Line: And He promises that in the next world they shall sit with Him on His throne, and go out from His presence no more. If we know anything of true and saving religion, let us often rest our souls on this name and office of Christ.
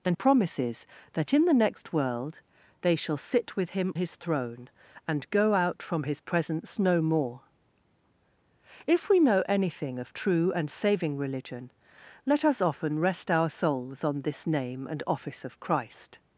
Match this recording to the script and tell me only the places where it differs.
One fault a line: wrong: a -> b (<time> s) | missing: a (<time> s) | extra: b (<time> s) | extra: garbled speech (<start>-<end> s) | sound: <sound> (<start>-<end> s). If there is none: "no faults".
missing: He (0.2 s)
missing: on (3.9 s)